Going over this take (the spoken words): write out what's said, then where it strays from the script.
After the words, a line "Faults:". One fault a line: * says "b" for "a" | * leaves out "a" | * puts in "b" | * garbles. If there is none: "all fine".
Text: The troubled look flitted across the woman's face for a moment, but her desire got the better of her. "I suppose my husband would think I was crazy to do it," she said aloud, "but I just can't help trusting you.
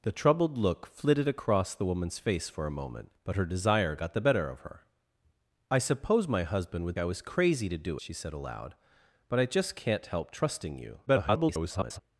The troubled look flitted across the woman's face for a moment, but her desire got the better of her. "I suppose my husband would I was crazy to do," she said aloud, "but I just can't help trusting you. [garbled]
Faults:
* leaves out "think"
* leaves out "it"
* garbles